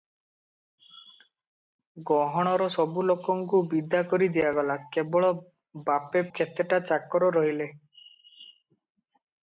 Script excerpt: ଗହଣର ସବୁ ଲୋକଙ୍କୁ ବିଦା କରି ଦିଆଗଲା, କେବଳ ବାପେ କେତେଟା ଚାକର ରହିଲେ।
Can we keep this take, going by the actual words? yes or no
yes